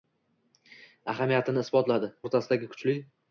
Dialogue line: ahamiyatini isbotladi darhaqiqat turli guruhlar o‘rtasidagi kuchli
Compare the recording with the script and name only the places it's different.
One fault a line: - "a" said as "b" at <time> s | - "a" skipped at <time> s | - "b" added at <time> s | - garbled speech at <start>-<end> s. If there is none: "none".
- "darhaqiqat turli guruhlar" skipped at 2.1 s